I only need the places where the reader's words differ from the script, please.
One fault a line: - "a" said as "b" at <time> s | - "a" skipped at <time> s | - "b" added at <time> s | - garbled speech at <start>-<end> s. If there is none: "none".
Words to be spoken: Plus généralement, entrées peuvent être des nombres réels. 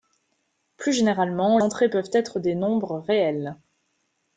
none